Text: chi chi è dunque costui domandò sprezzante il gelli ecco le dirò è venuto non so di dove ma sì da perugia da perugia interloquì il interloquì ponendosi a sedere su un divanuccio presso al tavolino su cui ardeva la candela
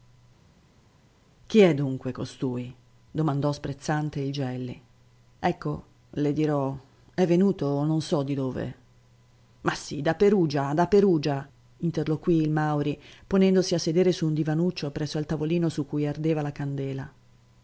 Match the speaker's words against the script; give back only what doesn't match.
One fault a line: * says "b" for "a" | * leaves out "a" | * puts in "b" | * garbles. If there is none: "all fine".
* leaves out "chi"
* says "mauri" for "interloquì"